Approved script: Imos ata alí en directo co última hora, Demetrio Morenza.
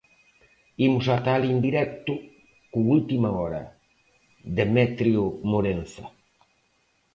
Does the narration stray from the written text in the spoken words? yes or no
no